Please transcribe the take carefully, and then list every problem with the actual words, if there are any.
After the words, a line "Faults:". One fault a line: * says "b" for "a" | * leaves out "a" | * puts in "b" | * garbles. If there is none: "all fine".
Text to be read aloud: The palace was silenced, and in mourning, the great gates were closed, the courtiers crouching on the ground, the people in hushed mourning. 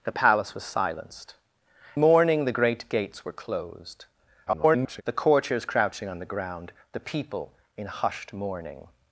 The palace was silenced, mourning, the great gates were closed, [garbled] the courtiers crouching on the ground, the people in hushed mourning.
Faults:
* leaves out "and in"
* garbles